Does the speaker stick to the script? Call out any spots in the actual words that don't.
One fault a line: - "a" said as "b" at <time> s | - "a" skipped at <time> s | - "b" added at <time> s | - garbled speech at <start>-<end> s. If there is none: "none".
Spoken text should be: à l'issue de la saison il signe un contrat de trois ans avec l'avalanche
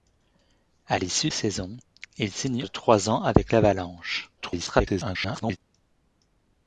- "de la" skipped at 1.3 s
- "un contrat" skipped at 2.6 s
- garbled speech at 4.4-5.6 s